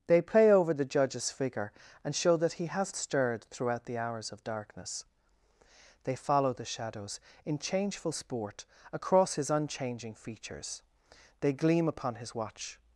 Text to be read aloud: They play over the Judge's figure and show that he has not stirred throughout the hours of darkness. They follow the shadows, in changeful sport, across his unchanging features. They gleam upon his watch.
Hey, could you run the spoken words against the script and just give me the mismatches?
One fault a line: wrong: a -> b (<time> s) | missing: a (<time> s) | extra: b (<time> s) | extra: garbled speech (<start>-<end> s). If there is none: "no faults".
missing: not (3.0 s)